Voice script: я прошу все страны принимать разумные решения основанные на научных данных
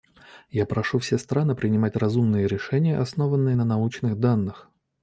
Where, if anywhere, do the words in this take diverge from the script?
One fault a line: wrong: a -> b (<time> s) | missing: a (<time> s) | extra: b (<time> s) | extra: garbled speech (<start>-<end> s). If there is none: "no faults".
no faults